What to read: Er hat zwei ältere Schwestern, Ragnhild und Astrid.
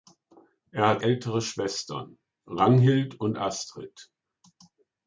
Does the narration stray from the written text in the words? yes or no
yes